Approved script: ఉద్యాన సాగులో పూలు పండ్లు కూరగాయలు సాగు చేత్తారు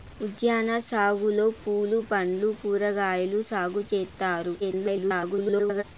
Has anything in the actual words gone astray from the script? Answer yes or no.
yes